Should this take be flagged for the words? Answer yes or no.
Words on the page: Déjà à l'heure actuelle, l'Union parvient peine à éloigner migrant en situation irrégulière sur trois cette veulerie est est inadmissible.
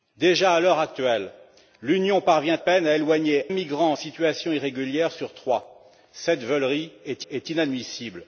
no